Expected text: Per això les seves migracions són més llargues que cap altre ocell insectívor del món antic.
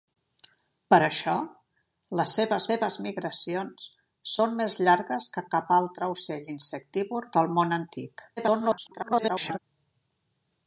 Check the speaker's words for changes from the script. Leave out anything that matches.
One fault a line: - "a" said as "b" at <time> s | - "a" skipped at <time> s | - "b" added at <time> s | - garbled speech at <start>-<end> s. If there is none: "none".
- "seves" added at 2.7 s
- garbled speech at 8.4-9.6 s